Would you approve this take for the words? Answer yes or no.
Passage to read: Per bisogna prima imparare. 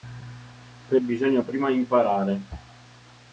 yes